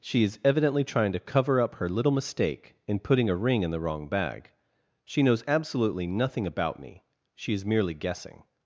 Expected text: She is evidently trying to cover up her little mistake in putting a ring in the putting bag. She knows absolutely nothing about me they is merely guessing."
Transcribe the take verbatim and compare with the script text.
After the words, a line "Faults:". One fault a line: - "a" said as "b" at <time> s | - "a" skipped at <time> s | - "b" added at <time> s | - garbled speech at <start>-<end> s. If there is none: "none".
She is evidently trying to cover up her little mistake in putting a ring in the wrong bag. She knows absolutely nothing about me she is merely guessing."
Faults:
- "putting" said as "wrong" at 3.8 s
- "they" said as "she" at 7.3 s